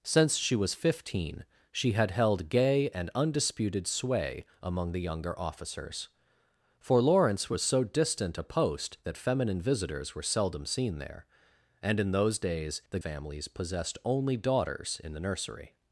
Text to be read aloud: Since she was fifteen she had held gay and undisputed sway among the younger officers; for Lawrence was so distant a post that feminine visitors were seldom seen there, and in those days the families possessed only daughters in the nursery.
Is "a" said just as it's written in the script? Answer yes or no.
yes